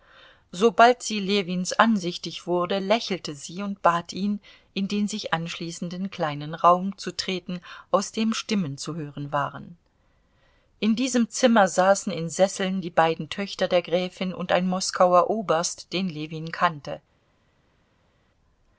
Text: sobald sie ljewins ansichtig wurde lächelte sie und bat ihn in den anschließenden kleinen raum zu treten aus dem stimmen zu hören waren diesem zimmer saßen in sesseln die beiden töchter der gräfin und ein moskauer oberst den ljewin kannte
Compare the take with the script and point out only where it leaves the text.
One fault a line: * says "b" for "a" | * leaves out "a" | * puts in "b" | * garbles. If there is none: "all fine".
* puts in "sich"
* puts in "in"